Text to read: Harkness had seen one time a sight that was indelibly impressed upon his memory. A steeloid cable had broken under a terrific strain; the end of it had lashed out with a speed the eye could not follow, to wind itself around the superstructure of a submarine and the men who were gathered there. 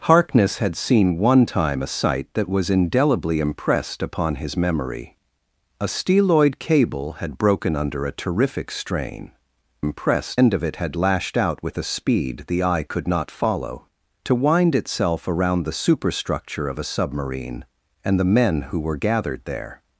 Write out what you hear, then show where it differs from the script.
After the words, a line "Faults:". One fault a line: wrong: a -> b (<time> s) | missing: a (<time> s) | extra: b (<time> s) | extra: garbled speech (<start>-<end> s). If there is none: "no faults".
Harkness had seen one time a sight that was indelibly impressed upon his memory. A steeloid cable had broken under a terrific strain; impressed end of it had lashed out with a speed the eye could not follow, to wind itself around the superstructure of a submarine and the men who were gathered there.
Faults:
wrong: the -> impressed (9.8 s)